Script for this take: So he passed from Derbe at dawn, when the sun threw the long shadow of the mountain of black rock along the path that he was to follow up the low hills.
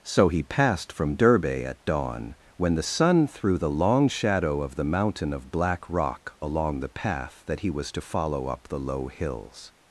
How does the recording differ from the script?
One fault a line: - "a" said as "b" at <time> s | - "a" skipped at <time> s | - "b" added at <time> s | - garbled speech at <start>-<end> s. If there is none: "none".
none